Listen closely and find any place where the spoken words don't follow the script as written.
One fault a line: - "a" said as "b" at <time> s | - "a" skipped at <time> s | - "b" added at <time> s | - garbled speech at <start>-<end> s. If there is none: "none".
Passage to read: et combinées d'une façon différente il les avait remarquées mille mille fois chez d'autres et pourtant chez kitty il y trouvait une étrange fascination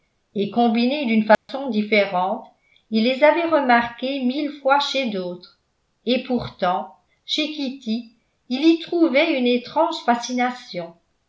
- "mille" skipped at 4.5 s